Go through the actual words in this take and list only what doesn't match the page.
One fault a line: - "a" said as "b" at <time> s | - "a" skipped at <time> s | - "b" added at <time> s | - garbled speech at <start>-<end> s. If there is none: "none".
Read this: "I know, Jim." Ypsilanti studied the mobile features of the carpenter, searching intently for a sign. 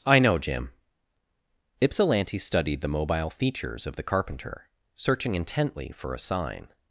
none